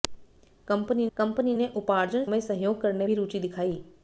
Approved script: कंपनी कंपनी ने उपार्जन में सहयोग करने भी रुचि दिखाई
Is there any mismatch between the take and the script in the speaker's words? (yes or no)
no